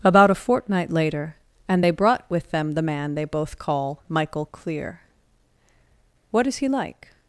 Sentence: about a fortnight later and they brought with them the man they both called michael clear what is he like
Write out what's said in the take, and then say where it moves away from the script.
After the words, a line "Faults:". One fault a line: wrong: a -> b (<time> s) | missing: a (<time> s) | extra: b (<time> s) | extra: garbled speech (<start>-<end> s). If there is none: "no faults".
about a fortnight later and they brought with them the man they both call michael clear what is he like
Faults:
wrong: called -> call (3.6 s)